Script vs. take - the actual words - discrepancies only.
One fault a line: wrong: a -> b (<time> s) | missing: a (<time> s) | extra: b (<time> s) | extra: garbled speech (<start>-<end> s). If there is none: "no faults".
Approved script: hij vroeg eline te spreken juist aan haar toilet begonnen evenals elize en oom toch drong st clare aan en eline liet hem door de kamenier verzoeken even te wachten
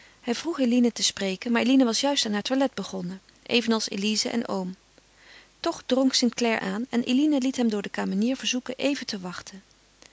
extra: maar eline was (1.5 s)